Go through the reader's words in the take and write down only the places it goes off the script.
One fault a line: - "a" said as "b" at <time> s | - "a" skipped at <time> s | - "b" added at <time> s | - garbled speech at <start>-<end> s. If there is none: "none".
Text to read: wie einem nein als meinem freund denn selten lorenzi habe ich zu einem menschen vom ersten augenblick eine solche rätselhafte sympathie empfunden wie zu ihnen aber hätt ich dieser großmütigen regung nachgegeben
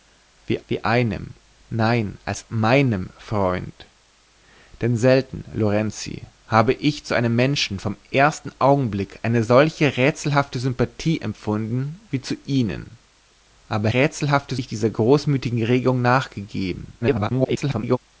- "wie" added at 0.7 s
- "hätt" said as "rätselhafte" at 13.9 s
- garbled speech at 17.0-18.0 s